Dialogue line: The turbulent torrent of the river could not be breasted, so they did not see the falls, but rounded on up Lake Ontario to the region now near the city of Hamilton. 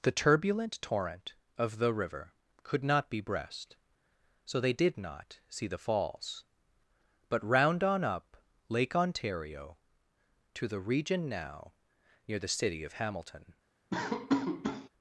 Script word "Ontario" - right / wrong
right